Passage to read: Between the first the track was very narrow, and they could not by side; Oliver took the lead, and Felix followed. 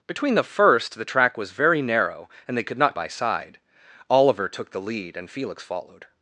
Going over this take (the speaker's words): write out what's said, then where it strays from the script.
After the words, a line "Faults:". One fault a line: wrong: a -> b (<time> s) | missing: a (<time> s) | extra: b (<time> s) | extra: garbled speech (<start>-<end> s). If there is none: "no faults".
Between the first the track was very narrow, and they could not by side; Oliver took the lead, and Felix followed.
Faults:
no faults